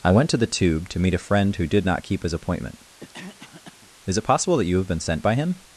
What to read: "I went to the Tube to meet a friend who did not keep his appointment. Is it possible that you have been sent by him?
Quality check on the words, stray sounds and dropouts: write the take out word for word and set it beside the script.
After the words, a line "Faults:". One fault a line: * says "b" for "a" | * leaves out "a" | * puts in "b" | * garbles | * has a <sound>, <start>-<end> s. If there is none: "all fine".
"I went to the Tube to meet a friend who did not keep his appointment. Is it possible that you have been sent by him?
Faults:
* has a cough, 3.0-3.9 s